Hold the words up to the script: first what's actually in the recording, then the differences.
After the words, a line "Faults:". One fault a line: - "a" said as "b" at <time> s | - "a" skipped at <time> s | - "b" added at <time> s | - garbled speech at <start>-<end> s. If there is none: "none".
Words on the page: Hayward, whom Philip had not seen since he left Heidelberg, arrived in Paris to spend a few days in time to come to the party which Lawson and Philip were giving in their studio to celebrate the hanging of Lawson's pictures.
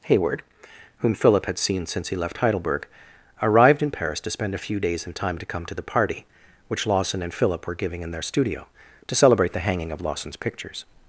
Hayward, whom Philip had seen since he left Heidelberg, arrived in Paris to spend a few days in time to come to the party which Lawson and Philip were giving in their studio to celebrate the hanging of Lawson's pictures.
Faults:
- "not" skipped at 1.6 s